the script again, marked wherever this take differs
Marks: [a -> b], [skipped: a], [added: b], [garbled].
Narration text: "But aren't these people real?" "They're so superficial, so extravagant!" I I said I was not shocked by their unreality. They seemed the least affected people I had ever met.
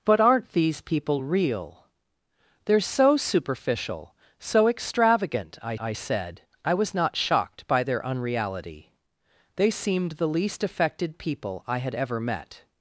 "But aren't these people real?" "They're so superficial, so extravagant!" I I said I was not shocked by their unreality. They seemed the least affected people I had ever met.